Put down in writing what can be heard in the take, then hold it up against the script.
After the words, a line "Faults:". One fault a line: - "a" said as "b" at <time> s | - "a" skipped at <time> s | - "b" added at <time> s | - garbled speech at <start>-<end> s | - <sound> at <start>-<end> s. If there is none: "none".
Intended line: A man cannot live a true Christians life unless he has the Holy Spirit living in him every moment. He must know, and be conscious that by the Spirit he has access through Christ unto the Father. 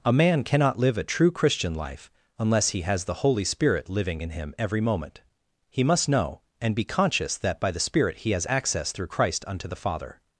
A man cannot live a true Christian life unless he has the Holy Spirit living in him every moment. He must know, and be conscious that by the Spirit he has access through Christ unto the Father.
Faults:
- "Christians" said as "Christian" at 1.3 s